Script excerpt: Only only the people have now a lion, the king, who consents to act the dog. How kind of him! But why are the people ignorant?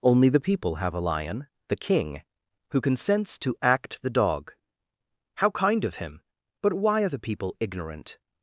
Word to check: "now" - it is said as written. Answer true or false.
false